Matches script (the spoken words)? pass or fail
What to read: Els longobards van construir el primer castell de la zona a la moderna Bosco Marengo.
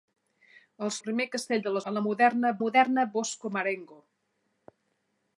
fail